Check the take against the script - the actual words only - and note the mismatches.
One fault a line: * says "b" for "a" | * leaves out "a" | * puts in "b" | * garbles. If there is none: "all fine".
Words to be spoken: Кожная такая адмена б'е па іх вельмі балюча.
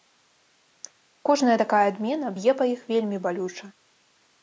all fine